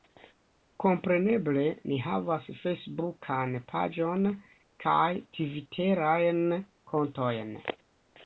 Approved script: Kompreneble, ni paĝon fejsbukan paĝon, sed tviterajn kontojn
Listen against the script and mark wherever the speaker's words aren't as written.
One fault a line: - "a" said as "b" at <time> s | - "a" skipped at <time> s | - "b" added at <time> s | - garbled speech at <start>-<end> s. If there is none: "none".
- "paĝon" said as "havas" at 2.0 s
- "sed" said as "kaj" at 4.9 s